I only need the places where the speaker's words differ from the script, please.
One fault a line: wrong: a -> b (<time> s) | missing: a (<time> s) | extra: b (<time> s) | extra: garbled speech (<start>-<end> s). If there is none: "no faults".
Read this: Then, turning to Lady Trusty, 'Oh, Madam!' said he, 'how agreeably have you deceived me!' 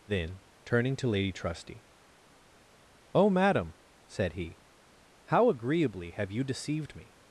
no faults